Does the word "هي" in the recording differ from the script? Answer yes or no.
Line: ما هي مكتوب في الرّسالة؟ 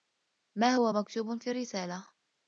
yes